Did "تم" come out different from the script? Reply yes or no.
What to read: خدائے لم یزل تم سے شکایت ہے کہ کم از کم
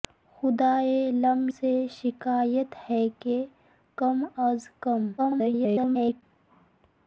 yes